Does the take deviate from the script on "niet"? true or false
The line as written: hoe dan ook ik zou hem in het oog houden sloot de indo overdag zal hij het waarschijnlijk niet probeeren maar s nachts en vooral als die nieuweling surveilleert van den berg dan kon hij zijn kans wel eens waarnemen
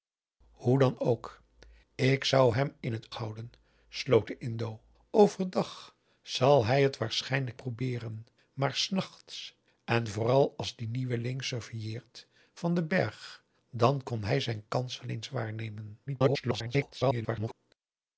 true